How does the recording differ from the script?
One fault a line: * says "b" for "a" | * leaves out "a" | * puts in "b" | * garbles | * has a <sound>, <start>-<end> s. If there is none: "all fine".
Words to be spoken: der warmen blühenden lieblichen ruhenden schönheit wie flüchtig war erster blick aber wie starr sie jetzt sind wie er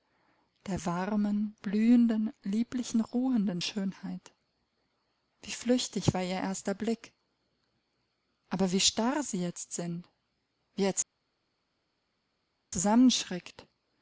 * puts in "ihr"